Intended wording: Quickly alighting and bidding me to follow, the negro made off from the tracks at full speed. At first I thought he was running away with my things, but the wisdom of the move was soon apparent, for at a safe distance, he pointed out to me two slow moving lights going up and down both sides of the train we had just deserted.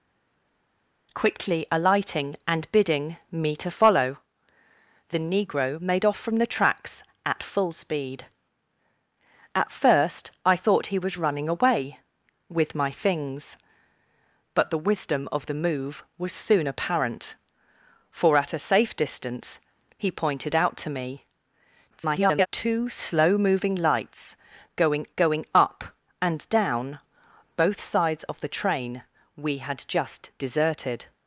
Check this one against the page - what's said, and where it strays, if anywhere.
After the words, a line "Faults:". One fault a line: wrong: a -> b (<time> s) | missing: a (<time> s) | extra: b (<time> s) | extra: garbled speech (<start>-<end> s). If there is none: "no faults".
Quickly alighting and bidding me to follow, the negro made off from the tracks at full speed. At first I thought he was running away with my things, but the wisdom of the move was soon apparent, for at a safe distance, he pointed out to me [garbled] two slow moving lights going going up and down both sides of the train we had just deserted.
Faults:
extra: garbled speech (21.9-22.5 s)
extra: going (25.2 s)